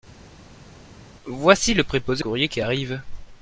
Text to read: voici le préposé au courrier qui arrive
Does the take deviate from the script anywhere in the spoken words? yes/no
yes